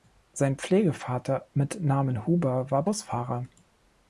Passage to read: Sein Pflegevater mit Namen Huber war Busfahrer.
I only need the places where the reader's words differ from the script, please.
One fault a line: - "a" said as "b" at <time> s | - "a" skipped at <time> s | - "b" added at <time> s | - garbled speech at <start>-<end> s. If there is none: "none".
none